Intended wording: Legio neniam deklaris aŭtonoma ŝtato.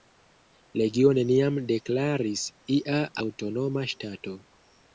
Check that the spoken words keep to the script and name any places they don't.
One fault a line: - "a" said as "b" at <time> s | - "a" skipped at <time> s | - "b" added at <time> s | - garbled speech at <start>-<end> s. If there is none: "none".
- "ia" added at 2.8 s